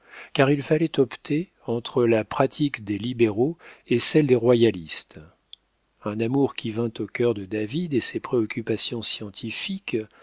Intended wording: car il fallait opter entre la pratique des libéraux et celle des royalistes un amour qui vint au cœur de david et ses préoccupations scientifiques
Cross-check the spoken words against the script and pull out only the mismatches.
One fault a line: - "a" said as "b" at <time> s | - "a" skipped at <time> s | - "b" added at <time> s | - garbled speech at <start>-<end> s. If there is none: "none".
none